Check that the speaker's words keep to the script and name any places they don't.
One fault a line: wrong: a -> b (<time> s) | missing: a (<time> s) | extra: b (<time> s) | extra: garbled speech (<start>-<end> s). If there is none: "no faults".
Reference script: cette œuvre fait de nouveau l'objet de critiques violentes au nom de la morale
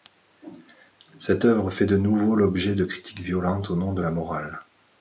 no faults